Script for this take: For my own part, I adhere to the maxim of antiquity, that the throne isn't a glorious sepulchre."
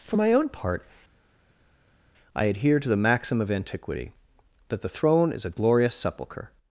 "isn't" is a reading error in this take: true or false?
true